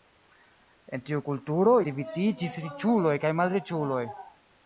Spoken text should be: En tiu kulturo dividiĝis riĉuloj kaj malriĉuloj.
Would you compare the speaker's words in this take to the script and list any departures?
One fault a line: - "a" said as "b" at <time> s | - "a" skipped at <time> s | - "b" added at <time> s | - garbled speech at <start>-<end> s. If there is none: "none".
none